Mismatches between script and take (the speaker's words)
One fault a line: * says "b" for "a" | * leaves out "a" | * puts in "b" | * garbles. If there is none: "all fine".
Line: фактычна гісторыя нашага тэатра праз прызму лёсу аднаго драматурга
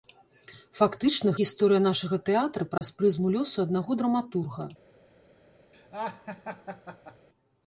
all fine